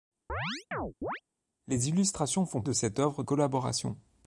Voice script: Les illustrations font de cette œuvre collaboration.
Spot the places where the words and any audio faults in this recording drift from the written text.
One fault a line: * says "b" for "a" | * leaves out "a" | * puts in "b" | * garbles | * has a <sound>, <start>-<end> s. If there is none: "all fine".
* has a chirp, 0.3-1.2 s